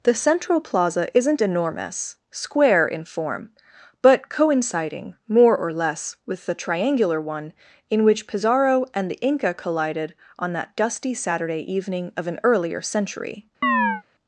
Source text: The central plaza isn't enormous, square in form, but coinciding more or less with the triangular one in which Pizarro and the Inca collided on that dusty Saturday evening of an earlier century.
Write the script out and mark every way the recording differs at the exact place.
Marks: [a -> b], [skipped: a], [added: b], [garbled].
The central plaza isn't enormous, square in form, but coinciding more or less with the triangular one in which Pizarro and the Inca collided on that dusty Saturday evening of an earlier century.